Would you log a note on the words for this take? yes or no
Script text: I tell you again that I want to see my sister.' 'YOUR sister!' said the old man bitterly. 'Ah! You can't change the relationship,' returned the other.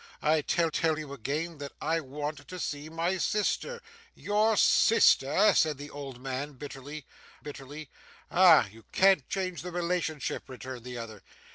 yes